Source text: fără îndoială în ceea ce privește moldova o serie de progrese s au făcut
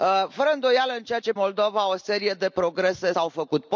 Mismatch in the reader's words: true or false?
true